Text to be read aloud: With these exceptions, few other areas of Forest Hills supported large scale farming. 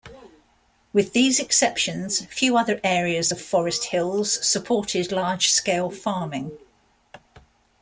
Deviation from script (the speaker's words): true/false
false